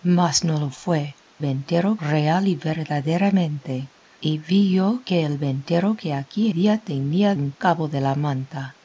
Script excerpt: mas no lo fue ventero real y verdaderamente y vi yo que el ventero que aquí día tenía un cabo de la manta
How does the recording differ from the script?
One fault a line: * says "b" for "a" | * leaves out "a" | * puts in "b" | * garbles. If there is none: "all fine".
all fine